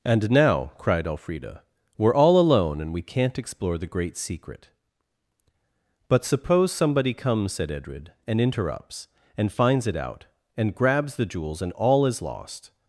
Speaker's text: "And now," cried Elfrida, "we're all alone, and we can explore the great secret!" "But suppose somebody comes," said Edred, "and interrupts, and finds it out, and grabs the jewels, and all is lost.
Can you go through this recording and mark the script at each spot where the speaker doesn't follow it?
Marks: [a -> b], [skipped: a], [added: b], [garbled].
"And now," cried Elfrida, "we're all alone, and we [can -> can't] explore the great secret!" "But suppose somebody comes," said Edred, "and interrupts, and finds it out, and grabs the jewels, and all is lost.